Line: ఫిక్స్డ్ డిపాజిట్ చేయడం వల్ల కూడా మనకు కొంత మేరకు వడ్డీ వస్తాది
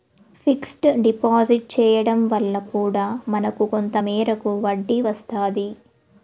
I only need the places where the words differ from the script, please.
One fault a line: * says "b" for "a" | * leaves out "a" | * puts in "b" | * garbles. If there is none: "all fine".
all fine